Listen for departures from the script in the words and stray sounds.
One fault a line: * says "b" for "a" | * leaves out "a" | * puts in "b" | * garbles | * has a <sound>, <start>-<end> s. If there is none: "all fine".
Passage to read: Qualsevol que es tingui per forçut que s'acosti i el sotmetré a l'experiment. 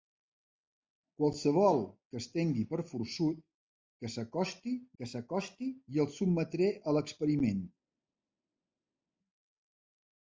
* puts in "que s'acosti"